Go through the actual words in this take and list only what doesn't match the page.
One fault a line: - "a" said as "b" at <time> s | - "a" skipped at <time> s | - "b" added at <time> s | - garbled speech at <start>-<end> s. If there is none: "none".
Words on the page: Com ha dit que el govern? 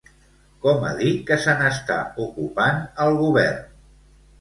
- "se n'està ocupant" added at 1.5 s